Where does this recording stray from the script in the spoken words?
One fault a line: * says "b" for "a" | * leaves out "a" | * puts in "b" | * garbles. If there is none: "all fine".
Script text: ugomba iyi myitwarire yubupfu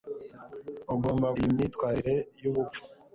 all fine